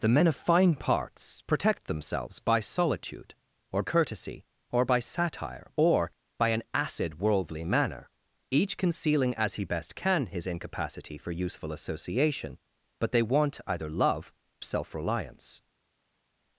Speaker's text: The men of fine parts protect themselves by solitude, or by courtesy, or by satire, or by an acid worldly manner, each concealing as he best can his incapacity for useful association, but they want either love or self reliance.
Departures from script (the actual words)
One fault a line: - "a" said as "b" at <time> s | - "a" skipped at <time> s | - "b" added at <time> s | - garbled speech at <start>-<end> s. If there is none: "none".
- "by" skipped at 3.8 s
- "or" skipped at 14.3 s